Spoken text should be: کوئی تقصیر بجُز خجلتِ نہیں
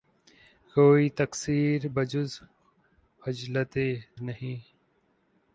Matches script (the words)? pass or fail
pass